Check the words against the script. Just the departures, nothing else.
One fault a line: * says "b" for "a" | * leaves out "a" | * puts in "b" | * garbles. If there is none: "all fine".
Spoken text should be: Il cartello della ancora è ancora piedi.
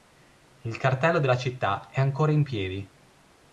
* says "città" for "ancora"
* puts in "in"